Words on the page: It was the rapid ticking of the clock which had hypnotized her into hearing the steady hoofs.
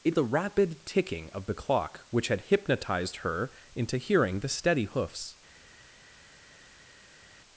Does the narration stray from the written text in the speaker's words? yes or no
yes